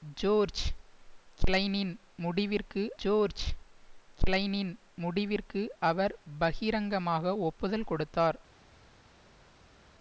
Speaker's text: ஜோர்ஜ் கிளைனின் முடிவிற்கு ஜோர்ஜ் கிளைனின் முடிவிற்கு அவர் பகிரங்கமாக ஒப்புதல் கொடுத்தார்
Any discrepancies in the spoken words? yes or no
no